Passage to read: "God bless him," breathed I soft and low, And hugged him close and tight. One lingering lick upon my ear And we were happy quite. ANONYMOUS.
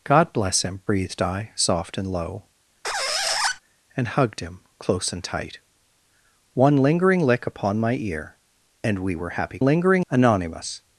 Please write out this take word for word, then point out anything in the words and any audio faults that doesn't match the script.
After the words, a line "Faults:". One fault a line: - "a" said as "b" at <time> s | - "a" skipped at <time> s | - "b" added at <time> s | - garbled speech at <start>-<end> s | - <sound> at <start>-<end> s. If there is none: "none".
"God bless him," breathed I soft and low, And hugged him close and tight. One lingering lick upon my ear And we were happy lingering. ANONYMOUS.
Faults:
- squeak at 2.8-3.6 s
- "quite" said as "lingering" at 9.6 s